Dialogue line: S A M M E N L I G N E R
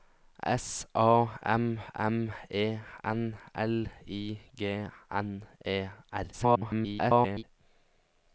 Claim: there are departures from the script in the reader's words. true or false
true